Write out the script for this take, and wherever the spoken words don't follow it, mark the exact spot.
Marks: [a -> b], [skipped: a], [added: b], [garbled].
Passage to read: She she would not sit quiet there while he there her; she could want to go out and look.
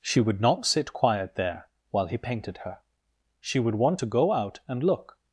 She [skipped: she] would not sit quiet there while he [there -> painted] her; she [could -> would] want to go out and look.